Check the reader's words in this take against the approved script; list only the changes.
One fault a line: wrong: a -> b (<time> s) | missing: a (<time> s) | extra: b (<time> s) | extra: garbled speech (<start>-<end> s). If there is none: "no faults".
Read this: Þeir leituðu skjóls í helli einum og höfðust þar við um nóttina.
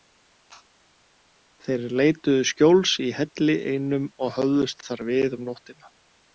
no faults